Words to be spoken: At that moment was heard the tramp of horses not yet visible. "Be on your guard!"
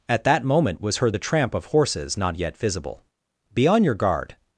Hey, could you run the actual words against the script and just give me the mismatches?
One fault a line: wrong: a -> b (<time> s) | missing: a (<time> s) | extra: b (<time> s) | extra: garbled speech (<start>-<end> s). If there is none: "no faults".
no faults